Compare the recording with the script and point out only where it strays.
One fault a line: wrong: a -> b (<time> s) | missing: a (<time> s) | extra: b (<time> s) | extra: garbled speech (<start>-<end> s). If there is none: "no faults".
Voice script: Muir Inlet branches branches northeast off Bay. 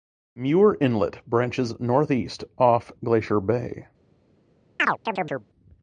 missing: branches (1.8 s)
extra: Glacier (3.0 s)